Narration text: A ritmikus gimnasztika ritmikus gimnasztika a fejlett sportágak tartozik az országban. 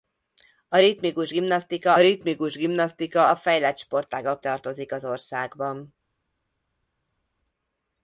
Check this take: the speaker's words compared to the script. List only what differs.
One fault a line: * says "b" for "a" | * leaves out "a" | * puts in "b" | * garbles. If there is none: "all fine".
all fine